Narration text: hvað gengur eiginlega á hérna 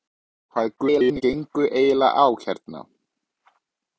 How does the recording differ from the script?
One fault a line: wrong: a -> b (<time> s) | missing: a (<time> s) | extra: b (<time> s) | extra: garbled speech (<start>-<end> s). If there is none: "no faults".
extra: garbled speech (0.8-1.2 s)